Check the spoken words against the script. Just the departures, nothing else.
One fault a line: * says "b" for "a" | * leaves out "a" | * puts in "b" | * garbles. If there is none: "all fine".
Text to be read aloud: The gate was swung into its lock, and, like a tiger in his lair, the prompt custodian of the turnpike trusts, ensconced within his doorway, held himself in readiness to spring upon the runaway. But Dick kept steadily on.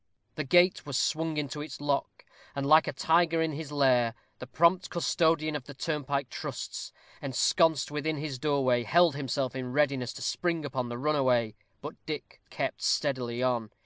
all fine